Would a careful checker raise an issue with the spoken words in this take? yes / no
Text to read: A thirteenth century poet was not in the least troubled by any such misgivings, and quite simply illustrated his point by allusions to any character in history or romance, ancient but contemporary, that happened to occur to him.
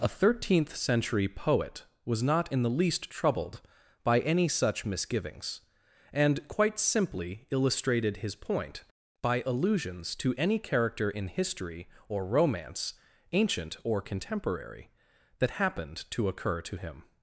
yes